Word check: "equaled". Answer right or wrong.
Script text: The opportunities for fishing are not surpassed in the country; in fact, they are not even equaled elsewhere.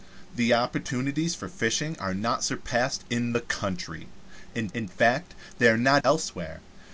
wrong